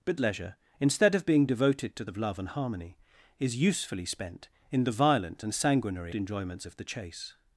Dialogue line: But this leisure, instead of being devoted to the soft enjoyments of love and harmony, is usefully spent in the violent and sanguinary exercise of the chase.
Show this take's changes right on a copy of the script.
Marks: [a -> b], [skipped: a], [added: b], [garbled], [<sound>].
But [skipped: this] leisure, instead of being devoted to [skipped: the soft enjoyments] of love and harmony, is usefully spent in the violent and sanguinary [exercise -> enjoyments] of the chase.